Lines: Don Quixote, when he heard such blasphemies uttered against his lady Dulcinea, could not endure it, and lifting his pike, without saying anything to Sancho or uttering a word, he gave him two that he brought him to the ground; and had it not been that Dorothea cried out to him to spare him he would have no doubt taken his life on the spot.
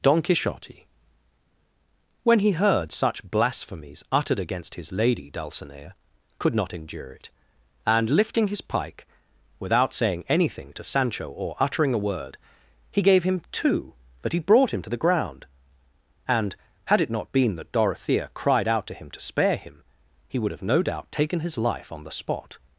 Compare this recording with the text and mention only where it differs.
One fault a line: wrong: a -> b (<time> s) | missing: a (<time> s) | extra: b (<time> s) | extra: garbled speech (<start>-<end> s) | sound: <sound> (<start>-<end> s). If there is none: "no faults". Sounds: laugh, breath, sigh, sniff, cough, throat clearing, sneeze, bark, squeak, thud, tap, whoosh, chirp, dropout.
no faults